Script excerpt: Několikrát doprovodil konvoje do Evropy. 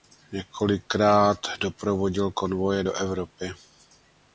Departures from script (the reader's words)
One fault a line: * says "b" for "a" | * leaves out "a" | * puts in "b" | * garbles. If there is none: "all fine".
all fine